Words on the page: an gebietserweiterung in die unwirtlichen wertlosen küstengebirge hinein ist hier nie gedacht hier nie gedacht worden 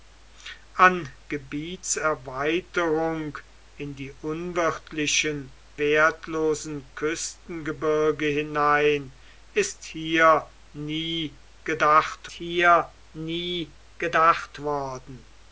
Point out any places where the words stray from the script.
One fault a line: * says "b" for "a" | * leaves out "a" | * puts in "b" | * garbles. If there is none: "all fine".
all fine